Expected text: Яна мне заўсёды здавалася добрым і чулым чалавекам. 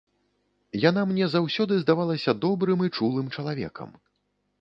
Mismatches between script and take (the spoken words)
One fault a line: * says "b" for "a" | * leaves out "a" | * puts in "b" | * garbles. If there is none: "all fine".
all fine